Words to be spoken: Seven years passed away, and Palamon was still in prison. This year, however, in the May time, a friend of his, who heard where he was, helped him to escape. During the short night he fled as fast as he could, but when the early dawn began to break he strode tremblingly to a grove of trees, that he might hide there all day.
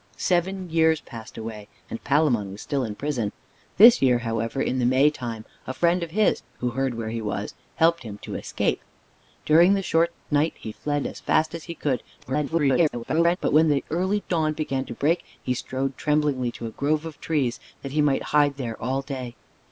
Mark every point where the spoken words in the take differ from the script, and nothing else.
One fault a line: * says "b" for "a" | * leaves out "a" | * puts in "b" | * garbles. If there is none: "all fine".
* garbles